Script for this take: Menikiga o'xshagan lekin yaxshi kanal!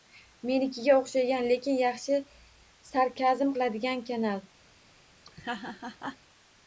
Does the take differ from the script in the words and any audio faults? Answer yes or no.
yes